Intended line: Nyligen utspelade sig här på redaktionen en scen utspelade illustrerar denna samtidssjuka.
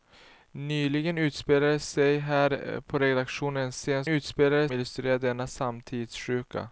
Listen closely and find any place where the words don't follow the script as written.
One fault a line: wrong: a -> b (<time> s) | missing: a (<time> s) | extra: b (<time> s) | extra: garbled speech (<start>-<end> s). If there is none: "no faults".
no faults